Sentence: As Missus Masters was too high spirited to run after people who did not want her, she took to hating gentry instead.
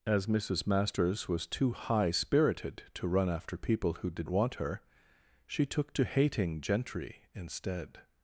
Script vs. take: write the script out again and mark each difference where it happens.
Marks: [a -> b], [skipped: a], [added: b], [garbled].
As Missus Masters was too high spirited to run after people who did [skipped: not] want her, she took to hating gentry instead.